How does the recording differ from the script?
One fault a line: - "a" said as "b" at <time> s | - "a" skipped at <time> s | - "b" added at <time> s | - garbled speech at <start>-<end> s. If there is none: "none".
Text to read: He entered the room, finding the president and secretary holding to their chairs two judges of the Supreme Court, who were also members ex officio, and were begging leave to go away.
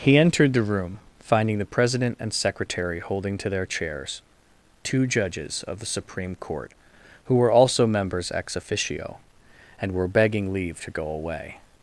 none